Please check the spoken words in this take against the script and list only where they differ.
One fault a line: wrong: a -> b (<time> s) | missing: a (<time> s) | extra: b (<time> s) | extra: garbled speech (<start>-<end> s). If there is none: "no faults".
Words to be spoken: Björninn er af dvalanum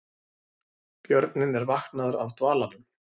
extra: vaknaður (1.7 s)